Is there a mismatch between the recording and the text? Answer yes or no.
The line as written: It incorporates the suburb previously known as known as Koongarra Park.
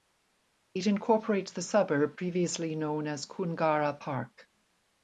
yes